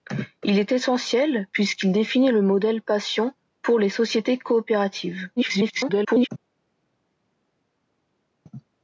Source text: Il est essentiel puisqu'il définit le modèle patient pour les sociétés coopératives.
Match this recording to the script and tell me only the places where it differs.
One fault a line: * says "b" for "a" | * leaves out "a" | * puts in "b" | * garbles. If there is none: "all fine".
* garbles